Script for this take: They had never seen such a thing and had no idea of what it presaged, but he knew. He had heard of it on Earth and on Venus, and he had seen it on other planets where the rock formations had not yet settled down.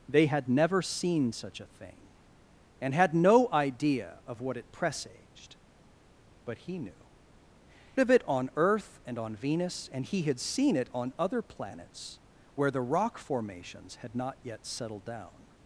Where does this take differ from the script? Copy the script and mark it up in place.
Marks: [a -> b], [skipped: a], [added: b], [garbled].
They had never seen such a thing and had no idea of what it presaged, but he knew. [skipped: He had heard] of it on Earth and on Venus, and he had seen it on other planets where the rock formations had not yet settled down.